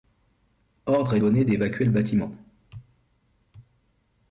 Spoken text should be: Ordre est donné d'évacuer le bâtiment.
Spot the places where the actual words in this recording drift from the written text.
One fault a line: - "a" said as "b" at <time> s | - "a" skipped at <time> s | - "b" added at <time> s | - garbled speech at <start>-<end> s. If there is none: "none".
none